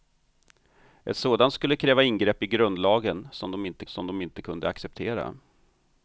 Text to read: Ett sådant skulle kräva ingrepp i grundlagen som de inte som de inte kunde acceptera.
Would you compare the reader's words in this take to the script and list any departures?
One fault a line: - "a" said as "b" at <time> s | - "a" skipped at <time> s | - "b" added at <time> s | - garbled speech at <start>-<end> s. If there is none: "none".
none